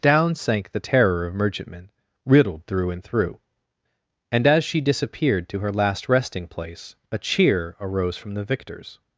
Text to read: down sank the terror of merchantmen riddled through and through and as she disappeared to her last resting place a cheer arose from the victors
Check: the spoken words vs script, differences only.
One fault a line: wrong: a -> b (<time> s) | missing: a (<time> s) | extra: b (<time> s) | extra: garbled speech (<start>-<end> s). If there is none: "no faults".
no faults